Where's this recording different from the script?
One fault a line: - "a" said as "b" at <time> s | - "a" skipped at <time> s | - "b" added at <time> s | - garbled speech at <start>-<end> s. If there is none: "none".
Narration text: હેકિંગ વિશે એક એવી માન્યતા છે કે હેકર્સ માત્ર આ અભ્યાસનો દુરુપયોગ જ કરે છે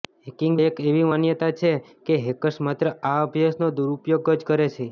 - "વિશે" skipped at 0.5 s